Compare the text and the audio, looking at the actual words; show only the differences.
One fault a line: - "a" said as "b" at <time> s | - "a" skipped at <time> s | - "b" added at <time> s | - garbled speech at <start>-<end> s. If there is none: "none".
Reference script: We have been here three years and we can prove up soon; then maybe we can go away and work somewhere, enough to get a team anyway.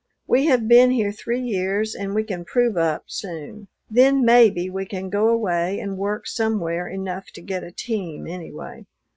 none